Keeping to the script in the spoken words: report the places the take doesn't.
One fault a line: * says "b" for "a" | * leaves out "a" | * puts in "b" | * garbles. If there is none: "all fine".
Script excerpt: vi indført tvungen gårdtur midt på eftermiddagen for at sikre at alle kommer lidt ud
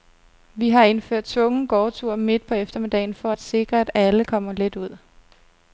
* puts in "har"